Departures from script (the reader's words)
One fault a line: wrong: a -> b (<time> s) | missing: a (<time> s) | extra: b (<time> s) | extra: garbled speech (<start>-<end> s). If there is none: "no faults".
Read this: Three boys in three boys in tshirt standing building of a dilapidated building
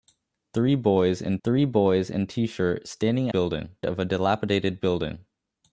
no faults